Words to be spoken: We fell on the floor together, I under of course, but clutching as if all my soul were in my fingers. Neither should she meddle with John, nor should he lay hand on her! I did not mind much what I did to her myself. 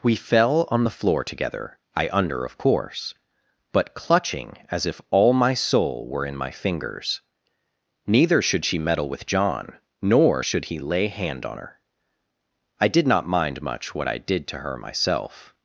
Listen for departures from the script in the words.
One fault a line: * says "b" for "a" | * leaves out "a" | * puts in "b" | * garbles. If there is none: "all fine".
all fine